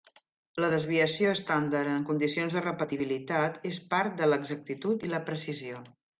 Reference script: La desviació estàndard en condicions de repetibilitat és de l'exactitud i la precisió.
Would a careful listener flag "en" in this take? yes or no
no